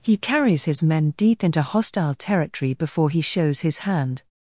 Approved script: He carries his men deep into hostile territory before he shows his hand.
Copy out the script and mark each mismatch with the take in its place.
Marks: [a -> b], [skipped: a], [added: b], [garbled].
He carries his men deep into hostile territory before he shows his hand.